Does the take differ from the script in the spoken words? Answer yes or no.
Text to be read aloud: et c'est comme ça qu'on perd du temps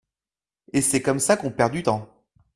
no